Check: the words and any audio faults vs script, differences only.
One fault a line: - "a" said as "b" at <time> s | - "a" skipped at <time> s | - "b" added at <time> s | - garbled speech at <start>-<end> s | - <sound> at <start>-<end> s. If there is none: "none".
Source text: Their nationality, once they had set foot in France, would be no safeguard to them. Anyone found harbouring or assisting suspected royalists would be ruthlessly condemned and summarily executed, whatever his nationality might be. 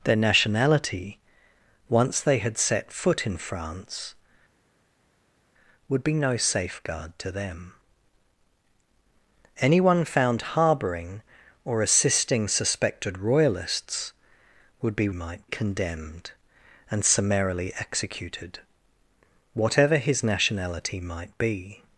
- "ruthlessly" said as "might" at 15.1 s